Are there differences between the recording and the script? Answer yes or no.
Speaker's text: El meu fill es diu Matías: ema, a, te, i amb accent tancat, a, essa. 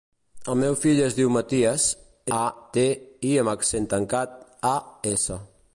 yes